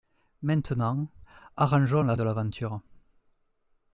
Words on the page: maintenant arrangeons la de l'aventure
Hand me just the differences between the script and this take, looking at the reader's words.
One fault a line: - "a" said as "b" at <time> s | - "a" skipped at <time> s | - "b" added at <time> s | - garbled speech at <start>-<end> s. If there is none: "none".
none